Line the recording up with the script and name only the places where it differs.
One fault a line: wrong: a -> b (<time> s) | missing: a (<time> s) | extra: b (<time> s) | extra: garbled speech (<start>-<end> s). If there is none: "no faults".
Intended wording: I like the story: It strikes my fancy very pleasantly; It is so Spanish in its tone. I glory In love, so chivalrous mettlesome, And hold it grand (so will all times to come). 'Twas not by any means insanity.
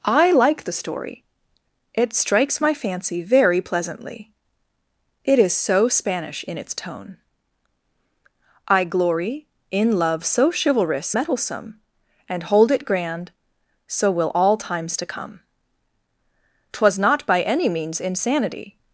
no faults